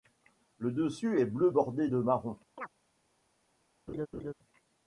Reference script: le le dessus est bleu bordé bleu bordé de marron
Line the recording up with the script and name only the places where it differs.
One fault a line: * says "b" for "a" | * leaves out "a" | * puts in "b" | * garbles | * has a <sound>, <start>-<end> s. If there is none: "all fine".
* leaves out "le"
* leaves out "bleu bordé"
* has a chirp, 2.6-2.7 s
* has a laugh, 3.9-4.3 s